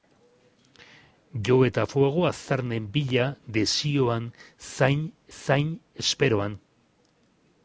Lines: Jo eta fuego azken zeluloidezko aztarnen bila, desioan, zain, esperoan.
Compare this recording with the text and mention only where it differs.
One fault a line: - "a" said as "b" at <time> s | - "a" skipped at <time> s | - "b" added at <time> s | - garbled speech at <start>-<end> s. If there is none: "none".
- "azken zeluloidezko" skipped at 2.2 s
- "zain" added at 5.4 s